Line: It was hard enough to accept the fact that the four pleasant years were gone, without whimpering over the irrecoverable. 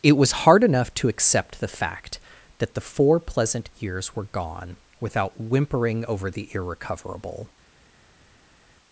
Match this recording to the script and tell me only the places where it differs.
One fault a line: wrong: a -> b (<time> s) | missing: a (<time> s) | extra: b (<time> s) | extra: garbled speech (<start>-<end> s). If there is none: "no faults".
no faults